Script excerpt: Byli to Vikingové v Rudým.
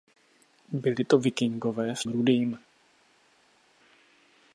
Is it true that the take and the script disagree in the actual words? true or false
false